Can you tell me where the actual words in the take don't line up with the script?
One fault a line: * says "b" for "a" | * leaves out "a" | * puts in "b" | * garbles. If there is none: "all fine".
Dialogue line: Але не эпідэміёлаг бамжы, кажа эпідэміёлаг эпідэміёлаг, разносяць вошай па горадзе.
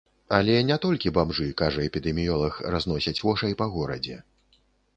* says "толькі" for "эпідэміёлаг"
* leaves out "эпідэміёлаг"